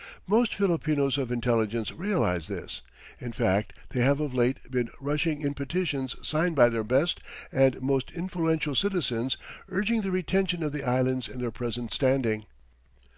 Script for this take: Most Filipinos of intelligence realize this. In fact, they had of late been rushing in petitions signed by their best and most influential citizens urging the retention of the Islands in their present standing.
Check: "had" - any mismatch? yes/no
yes